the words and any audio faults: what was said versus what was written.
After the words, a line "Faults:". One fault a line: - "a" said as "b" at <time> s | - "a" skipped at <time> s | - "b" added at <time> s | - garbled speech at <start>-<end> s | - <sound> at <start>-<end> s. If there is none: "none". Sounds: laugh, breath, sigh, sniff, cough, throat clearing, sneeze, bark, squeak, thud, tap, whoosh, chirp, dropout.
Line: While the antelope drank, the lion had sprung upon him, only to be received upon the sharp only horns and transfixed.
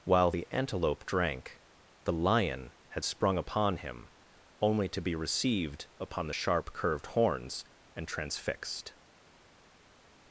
While the antelope drank, the lion had sprung upon him, only to be received upon the sharp curved horns and transfixed.
Faults:
- "only" said as "curved" at 6.7 s